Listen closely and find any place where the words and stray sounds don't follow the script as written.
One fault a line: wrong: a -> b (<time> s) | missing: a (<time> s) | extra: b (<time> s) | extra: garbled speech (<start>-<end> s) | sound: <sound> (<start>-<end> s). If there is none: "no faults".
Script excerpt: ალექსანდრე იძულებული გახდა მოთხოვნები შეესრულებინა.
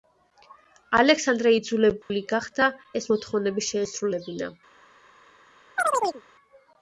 sound: dropout (2.0-2.1 s)
extra: ეს (3.0 s)
sound: chirp (5.8-6.2 s)